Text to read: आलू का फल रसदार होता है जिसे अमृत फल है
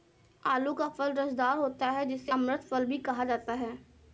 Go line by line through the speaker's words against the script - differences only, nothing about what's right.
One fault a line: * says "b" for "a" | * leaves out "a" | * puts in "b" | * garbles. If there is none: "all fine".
* puts in "भी कहा जाता"